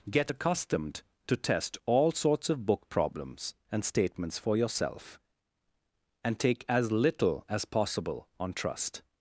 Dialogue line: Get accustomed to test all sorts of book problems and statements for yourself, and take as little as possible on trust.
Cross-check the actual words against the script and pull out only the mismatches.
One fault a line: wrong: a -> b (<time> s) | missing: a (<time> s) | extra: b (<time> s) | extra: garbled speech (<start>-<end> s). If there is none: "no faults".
no faults